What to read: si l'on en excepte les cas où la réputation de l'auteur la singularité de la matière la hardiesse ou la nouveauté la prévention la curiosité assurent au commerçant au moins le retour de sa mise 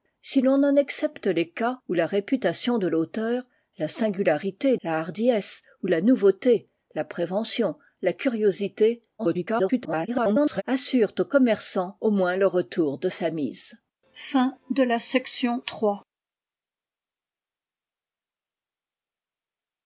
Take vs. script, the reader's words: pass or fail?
fail